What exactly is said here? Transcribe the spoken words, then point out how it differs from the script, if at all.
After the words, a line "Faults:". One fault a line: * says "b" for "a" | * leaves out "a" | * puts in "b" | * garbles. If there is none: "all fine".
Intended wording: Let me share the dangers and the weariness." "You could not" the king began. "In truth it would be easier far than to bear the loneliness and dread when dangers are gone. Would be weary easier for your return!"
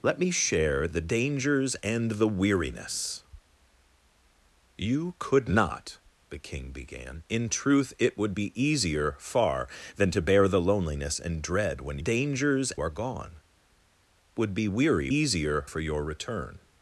Let me share the dangers and the weariness." "You could not" the king began. "In truth it would be easier far than to bear the loneliness and dread when dangers are gone. Would be weary easier for your return!"
Faults:
all fine